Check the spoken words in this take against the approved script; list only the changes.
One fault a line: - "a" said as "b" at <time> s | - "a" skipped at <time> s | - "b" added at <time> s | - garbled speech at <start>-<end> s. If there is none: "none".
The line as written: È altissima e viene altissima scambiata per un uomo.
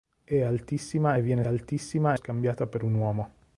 none